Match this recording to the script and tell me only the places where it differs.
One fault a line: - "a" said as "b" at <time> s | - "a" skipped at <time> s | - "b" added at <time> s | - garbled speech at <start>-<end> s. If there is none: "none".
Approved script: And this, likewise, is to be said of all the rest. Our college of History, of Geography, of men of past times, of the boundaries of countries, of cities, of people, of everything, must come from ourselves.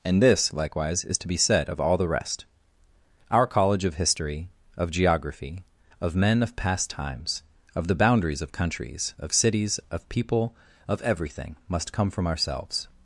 none